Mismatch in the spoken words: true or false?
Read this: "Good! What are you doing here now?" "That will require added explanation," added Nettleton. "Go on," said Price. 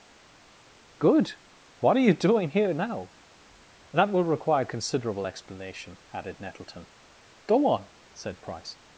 true